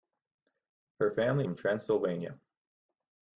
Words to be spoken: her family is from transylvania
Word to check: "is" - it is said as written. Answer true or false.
false